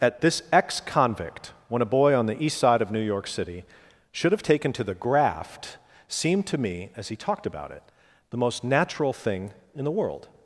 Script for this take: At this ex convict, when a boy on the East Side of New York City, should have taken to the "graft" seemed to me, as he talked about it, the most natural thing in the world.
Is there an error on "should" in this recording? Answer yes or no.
no